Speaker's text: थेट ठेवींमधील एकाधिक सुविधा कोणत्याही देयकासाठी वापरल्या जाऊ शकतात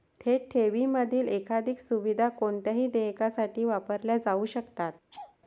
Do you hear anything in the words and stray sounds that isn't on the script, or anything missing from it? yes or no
yes